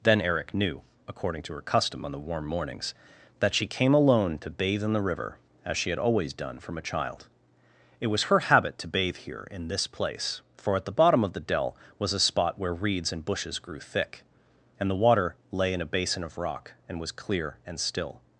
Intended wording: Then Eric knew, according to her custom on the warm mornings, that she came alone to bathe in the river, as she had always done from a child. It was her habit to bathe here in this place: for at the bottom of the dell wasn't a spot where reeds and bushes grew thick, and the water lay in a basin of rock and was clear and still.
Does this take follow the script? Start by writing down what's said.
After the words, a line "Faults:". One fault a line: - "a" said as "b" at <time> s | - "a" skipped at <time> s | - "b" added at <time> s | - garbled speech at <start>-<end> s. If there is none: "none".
Then Eric knew, according to her custom on the warm mornings, that she came alone to bathe in the river, as she had always done from a child. It was her habit to bathe here in this place: for at the bottom of the dell was a spot where reeds and bushes grew thick, and the water lay in a basin of rock and was clear and still.
Faults:
- "wasn't" said as "was" at 12.0 s